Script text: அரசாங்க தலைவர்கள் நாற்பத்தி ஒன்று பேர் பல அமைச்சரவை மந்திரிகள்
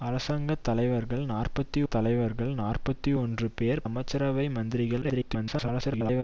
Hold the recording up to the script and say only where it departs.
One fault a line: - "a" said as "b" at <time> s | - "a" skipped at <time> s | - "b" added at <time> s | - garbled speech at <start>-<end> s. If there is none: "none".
- "தலைவர்கள் நாற்பத்தி" added at 1.9 s
- "பல" skipped at 3.8 s
- garbled speech at 5.0-6.2 s